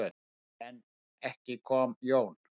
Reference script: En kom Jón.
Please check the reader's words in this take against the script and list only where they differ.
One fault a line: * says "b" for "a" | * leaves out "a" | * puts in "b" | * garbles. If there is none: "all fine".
* puts in "ekki"